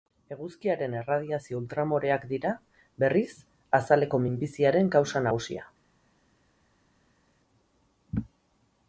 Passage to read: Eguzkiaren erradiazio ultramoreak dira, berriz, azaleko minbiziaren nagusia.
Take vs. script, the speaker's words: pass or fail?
fail